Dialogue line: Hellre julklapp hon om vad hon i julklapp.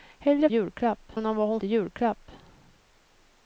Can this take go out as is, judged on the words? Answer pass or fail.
pass